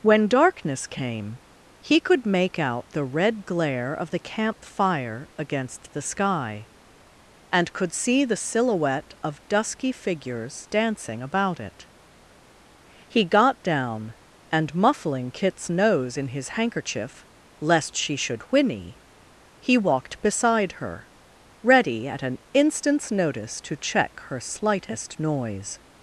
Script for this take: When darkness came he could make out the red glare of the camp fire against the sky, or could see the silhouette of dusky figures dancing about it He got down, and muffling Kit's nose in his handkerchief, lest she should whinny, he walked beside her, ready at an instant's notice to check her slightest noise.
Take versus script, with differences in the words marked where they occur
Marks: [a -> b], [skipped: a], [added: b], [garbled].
When darkness came he could make out the red glare of the camp fire against the sky, [or -> and] could see the silhouette of dusky figures dancing about it He got down, and muffling Kit's nose in his handkerchief, lest she should whinny, he walked beside her, ready at an instant's notice to check her slightest noise.